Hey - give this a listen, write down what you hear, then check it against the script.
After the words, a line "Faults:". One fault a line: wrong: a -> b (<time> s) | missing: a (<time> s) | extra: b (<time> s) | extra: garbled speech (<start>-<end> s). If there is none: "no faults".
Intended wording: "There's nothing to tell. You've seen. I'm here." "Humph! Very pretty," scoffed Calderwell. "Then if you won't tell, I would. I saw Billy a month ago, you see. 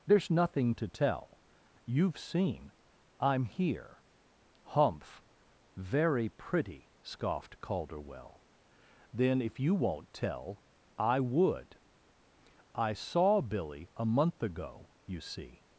"There's nothing to tell. You've seen. I'm here." "Humph! Very pretty," scoffed Calderwell. "Then if you won't tell, I would. I saw Billy a month ago, you see.
Faults:
no faults